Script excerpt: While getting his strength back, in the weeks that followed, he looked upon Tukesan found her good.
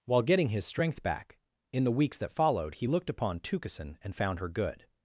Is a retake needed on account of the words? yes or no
yes